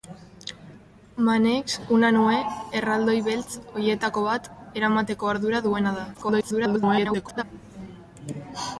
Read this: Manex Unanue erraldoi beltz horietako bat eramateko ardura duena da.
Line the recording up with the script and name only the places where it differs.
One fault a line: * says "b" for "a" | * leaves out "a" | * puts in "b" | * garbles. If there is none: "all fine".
* garbles